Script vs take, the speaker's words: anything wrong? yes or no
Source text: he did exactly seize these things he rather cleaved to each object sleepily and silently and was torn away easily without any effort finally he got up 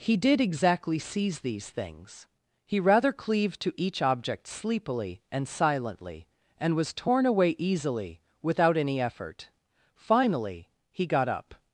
no